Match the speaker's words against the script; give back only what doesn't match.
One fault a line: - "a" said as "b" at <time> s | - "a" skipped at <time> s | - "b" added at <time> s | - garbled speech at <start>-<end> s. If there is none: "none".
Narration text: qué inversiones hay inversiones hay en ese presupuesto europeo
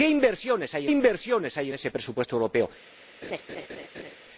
none